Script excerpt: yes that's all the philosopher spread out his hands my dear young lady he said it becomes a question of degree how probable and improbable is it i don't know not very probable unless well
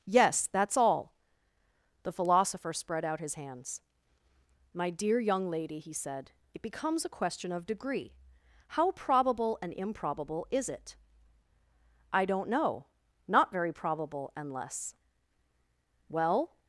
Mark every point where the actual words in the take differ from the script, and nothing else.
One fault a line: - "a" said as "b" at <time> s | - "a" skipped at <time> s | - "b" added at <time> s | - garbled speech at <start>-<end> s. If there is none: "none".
none